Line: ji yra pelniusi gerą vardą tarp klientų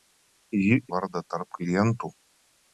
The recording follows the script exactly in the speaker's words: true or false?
false